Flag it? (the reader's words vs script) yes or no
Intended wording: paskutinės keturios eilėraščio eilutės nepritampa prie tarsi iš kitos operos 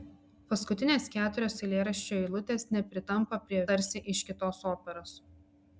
no